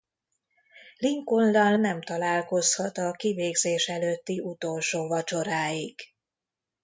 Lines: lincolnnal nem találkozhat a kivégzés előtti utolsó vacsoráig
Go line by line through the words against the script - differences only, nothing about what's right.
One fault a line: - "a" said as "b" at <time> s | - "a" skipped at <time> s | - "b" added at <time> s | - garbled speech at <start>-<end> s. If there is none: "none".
none